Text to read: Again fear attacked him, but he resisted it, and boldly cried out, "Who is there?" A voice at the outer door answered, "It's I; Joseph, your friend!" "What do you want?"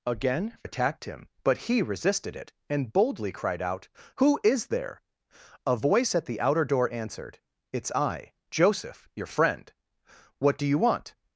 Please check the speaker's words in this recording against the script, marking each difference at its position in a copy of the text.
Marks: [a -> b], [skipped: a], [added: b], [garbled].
Again [skipped: fear] attacked him, but he resisted it, and boldly cried out, "Who is there?" A voice at the outer door answered, "It's I; Joseph, your friend!" "What do you want?"